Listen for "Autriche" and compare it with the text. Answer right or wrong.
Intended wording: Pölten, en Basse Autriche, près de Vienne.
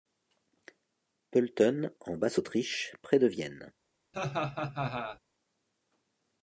right